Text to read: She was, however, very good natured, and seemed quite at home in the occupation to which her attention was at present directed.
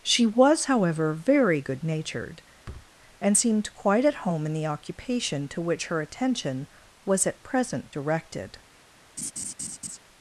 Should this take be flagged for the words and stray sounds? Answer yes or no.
yes